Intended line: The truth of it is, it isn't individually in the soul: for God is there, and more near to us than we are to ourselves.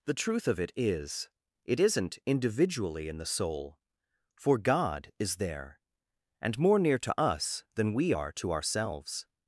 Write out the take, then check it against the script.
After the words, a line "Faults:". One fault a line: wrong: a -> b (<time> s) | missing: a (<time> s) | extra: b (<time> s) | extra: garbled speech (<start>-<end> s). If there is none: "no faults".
The truth of it is, it isn't individually in the soul: for God is there, and more near to us than we are to ourselves.
Faults:
no faults